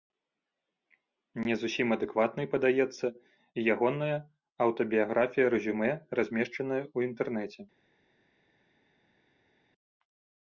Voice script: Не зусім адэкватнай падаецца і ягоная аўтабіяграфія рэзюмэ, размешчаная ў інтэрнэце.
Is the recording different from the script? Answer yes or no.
no